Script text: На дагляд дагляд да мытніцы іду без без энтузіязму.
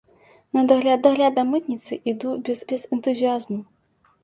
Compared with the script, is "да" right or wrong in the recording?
right